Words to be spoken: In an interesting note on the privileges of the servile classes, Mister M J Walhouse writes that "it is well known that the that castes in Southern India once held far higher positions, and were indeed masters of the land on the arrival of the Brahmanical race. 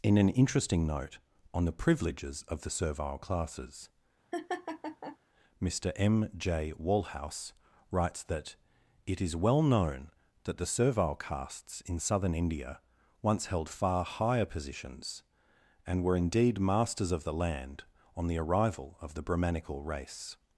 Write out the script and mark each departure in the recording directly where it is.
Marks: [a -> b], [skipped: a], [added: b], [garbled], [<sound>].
In an interesting note on the privileges of the servile classes, [laugh] Mister M J Walhouse writes that "it is well known that the [that -> servile] castes in Southern India once held far higher positions, and were indeed masters of the land on the arrival of the Brahmanical race.